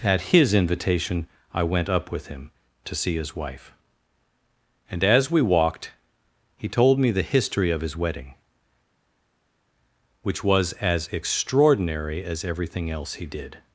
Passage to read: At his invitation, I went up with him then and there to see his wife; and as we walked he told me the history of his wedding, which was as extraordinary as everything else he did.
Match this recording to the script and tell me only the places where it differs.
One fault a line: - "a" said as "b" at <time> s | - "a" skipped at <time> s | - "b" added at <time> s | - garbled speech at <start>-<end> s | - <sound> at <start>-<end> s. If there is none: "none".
- "then and there" skipped at 2.5 s